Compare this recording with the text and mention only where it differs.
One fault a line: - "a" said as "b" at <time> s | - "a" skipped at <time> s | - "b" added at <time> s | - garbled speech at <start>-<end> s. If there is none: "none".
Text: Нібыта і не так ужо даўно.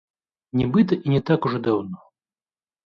none